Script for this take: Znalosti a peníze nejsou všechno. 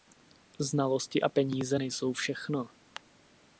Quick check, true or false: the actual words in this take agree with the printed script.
true